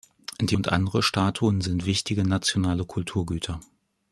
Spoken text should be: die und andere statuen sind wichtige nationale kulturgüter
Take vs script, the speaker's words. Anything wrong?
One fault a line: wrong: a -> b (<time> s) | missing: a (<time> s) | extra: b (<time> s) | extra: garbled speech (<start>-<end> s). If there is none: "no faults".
no faults